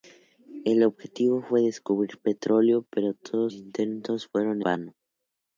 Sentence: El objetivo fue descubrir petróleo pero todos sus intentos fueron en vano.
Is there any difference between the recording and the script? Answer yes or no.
yes